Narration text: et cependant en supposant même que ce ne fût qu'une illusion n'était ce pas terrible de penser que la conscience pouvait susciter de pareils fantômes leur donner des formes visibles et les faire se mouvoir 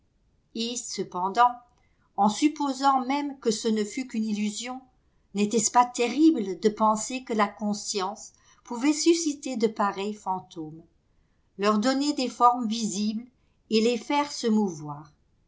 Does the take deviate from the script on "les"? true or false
false